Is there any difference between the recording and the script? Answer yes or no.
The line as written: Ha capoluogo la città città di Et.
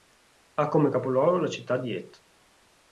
yes